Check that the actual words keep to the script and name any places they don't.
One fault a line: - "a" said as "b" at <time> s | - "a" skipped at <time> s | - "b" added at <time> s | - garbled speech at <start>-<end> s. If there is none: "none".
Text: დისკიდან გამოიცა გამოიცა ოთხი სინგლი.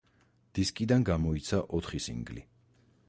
- "გამოიცა" skipped at 1.6 s